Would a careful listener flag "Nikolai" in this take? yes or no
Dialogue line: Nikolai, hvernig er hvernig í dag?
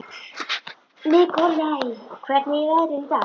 no